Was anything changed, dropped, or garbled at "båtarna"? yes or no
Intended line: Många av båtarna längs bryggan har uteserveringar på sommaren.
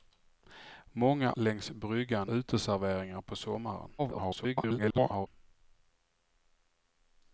yes